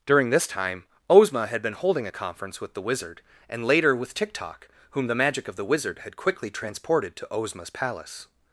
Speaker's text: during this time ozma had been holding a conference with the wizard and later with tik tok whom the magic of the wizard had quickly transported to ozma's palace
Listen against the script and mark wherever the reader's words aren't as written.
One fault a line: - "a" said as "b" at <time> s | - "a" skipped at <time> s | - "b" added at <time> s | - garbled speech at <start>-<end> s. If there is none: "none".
none